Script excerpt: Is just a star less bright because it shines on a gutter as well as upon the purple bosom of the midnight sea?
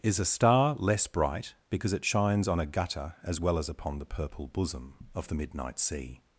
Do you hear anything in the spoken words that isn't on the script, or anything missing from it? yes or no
yes